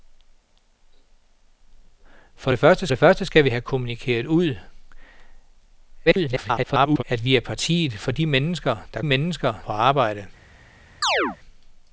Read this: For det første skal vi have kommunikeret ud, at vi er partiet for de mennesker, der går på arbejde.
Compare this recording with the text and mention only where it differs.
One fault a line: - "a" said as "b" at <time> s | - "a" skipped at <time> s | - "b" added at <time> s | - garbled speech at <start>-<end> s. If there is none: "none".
- "det første" added at 2.9 s
- garbled speech at 6.1-7.0 s
- "går" said as "mennesker" at 9.0 s